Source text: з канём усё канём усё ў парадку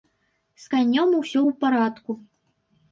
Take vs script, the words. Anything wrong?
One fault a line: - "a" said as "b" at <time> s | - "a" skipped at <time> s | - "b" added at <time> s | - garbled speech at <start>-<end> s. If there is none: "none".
- "канём усё" skipped at 1.4 s